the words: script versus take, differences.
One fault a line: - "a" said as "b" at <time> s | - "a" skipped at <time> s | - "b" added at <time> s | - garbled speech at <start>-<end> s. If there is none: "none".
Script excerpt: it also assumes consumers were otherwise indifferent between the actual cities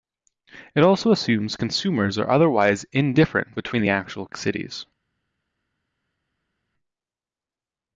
- "were" said as "are" at 2.2 s